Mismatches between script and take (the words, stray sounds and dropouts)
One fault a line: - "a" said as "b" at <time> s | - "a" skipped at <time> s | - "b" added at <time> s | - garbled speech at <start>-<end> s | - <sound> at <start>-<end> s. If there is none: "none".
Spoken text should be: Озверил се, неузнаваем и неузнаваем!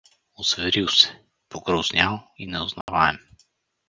- "неузнаваем" said as "погрознял" at 1.5 s
- dropout at 2.8-2.9 s